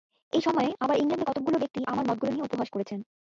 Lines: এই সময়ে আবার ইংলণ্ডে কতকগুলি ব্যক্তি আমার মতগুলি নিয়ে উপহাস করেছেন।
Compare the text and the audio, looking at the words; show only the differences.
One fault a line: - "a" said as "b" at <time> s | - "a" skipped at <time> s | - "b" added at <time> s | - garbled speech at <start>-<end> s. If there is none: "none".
none